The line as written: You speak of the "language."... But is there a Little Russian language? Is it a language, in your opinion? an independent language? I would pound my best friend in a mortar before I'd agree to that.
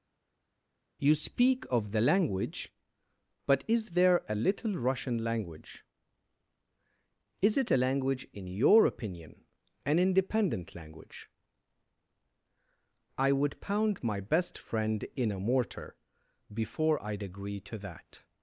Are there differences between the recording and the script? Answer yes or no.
no